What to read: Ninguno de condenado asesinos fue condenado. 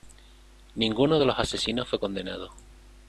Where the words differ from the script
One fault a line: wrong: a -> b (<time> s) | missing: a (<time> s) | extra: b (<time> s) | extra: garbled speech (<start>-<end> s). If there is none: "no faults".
wrong: condenado -> los (1.3 s)